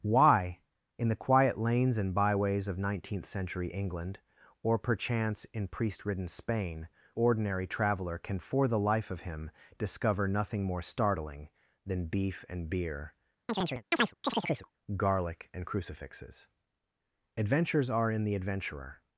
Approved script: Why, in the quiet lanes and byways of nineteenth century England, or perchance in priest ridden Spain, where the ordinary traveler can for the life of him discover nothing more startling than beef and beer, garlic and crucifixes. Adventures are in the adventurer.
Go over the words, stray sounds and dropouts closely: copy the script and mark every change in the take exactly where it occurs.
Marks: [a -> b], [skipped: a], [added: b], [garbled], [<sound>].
Why, in the quiet lanes and byways of nineteenth century England, or perchance in priest ridden Spain, [skipped: where the] ordinary traveler can for the life of him discover nothing more startling than beef and beer, [chirp] garlic and crucifixes. Adventures are in the adventurer.